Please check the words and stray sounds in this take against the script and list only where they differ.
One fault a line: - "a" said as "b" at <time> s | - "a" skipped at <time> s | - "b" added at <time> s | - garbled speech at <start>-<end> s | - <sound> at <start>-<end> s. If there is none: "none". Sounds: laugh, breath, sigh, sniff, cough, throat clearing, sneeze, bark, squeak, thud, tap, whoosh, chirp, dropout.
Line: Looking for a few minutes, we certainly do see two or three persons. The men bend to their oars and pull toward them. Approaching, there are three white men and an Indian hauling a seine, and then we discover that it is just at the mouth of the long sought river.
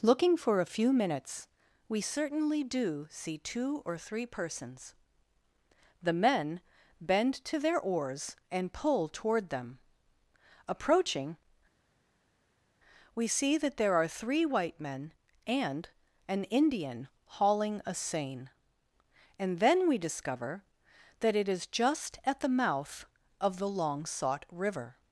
- "we see that" added at 13.1 s